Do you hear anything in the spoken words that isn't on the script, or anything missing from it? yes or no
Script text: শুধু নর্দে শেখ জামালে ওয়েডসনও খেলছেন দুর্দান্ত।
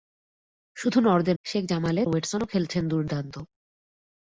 no